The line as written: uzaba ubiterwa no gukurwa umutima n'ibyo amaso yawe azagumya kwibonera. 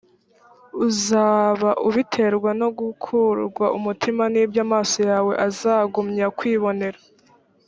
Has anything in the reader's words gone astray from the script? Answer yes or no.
no